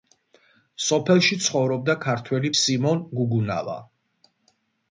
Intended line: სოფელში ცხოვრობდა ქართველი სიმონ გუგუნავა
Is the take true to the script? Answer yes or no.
yes